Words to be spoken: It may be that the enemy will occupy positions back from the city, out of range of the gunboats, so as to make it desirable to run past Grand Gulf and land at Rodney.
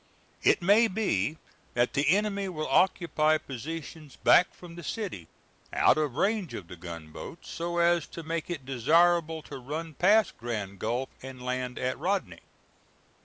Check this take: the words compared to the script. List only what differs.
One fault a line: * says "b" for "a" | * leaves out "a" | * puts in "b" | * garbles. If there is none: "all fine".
all fine